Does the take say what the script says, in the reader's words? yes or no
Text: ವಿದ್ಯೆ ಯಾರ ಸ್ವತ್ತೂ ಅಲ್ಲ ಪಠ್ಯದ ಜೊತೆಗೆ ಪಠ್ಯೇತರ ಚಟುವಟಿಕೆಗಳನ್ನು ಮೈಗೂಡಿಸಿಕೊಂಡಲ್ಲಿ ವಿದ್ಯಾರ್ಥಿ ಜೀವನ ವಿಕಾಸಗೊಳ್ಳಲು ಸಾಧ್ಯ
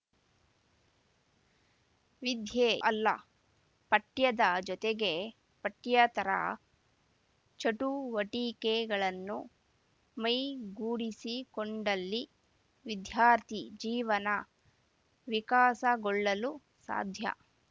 no